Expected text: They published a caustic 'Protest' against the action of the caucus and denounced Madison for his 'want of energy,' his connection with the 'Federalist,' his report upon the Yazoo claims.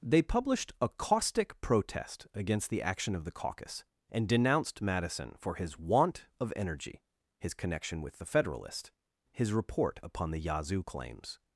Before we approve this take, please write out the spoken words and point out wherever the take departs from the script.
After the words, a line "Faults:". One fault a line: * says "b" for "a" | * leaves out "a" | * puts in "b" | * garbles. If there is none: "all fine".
They published a caustic 'Protest' against the action of the caucus and denounced Madison for his 'want of energy,' his connection with the 'Federalist,' his report upon the Yazoo claims.
Faults:
all fine